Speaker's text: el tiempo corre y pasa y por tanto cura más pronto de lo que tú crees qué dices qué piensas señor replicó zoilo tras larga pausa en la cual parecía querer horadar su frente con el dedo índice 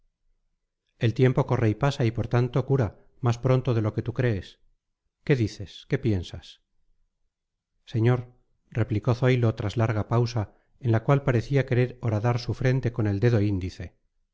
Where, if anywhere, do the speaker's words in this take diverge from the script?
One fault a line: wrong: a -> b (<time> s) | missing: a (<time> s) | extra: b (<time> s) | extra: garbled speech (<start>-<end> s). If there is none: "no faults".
no faults